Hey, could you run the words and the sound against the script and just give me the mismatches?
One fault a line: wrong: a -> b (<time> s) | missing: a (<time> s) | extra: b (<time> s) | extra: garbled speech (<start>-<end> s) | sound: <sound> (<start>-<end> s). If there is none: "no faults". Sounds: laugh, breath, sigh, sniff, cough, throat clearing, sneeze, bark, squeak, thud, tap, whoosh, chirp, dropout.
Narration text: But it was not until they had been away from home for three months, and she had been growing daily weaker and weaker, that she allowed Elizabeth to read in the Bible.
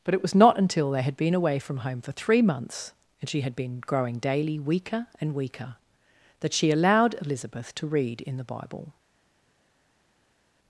no faults